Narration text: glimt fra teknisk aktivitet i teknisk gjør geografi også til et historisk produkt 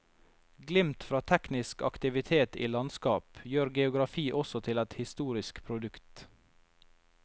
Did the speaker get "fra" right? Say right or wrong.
right